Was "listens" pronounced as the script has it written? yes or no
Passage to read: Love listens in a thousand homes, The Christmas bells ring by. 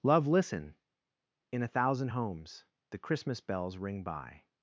no